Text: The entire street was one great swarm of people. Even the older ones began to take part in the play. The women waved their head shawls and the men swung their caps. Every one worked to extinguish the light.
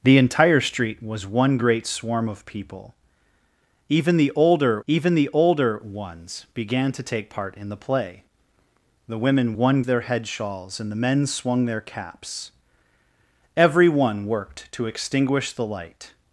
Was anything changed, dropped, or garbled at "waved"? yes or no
yes